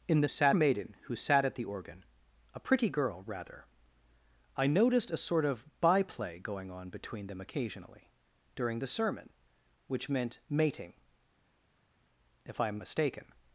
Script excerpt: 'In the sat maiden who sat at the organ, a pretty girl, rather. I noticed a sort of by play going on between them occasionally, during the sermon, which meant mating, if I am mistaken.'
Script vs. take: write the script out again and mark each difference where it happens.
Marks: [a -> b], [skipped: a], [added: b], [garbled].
'In the sat maiden who sat at the organ, a pretty girl, rather. I noticed a sort of by play going on between them occasionally, during the sermon, which meant mating, if I am mistaken.'